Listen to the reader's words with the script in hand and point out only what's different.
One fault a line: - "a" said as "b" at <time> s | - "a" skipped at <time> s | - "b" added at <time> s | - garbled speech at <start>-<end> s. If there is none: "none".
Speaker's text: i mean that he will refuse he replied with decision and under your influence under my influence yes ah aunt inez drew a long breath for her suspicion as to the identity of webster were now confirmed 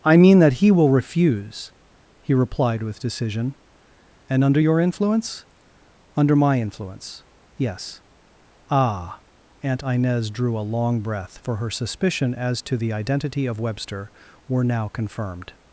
none